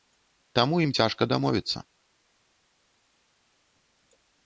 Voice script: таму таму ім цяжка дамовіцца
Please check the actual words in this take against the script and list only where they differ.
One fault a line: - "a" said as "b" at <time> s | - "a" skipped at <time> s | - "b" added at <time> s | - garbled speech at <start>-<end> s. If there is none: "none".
- "таму" skipped at 0.8 s